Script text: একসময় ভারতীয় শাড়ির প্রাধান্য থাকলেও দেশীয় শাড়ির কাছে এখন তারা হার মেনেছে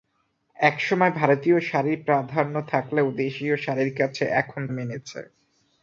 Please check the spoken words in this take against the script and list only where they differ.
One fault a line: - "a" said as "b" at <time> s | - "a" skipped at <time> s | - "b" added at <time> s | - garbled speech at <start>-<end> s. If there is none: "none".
- "তারা হার" skipped at 4.6 s